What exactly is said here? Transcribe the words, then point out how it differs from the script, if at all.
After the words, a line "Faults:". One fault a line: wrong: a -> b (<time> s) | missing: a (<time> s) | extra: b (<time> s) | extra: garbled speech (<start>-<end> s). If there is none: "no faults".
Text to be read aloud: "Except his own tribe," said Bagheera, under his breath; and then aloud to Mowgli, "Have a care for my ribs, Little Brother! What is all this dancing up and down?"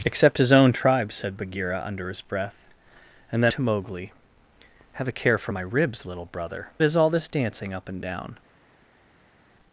"Except his own tribe," said Bagheera, under his breath; and then to Mowgli, "Have a care for my ribs, Little Brother! Is all this dancing up and down?"
Faults:
missing: aloud (3.5 s)
missing: What (6.7 s)